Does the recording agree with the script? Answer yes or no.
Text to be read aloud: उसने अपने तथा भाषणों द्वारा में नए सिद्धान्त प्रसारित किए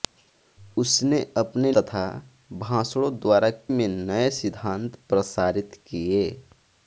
yes